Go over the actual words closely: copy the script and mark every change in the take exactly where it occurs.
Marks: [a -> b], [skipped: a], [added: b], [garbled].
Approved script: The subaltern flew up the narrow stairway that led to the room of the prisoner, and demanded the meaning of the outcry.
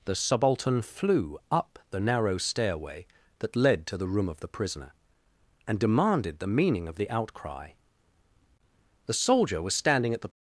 The subaltern flew up the narrow stairway that led to the room of the prisoner, and demanded the meaning of the outcry. [added: The soldier was standing at the]